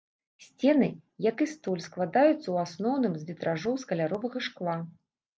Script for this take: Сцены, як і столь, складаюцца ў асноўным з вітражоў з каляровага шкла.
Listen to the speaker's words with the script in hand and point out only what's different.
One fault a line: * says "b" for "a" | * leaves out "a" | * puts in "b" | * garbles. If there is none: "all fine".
all fine